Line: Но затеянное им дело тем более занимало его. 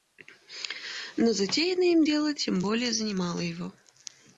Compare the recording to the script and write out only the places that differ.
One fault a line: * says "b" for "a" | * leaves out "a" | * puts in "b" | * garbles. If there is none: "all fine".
all fine